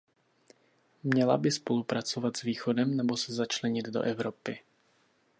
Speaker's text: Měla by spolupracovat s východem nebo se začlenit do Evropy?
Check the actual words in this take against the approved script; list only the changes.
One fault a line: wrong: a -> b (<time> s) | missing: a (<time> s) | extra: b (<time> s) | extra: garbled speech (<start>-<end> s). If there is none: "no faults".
no faults